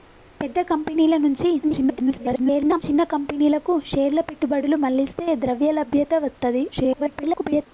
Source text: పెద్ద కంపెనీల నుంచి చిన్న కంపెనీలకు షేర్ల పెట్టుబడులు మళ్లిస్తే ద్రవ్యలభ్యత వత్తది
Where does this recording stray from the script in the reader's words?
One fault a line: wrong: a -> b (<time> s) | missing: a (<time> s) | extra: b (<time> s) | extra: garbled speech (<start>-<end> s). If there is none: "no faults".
extra: garbled speech (1.6-2.8 s)
extra: garbled speech (6.7-7.7 s)